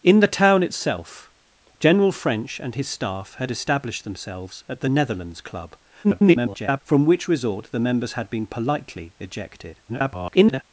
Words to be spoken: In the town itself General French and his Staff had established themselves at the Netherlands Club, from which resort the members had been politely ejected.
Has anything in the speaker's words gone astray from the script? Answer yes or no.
yes